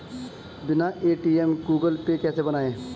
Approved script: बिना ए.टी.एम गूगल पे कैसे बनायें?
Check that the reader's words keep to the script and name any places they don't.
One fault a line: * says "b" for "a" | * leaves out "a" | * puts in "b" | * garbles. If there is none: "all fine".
all fine